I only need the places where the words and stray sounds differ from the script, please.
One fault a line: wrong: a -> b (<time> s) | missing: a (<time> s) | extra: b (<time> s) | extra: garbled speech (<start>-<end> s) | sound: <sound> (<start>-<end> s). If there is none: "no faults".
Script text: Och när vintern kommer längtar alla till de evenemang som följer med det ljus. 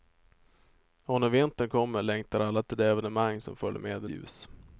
no faults